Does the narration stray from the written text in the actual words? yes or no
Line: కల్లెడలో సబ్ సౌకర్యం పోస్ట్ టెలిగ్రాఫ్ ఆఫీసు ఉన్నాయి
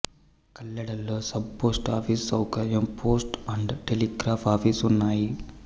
yes